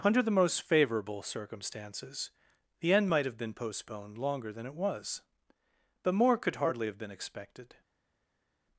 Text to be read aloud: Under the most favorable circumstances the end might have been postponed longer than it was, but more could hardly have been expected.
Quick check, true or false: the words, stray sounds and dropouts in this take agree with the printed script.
true